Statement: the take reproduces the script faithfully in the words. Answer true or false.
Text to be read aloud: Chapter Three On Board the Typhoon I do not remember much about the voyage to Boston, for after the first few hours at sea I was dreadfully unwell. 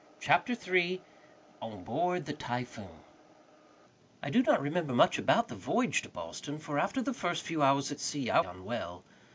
false